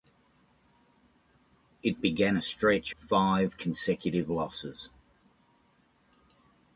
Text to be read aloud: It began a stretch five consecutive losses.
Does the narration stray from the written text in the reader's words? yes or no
no